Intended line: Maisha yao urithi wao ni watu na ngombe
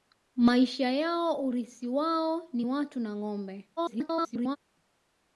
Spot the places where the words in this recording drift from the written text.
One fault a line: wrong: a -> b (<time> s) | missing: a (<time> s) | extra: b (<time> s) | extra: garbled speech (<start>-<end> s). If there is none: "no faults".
extra: garbled speech (3.8-4.6 s)